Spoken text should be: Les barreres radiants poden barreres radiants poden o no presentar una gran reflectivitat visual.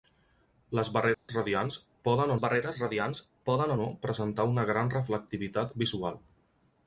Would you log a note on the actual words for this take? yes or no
no